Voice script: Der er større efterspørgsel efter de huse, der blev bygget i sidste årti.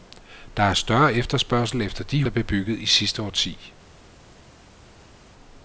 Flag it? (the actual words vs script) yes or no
yes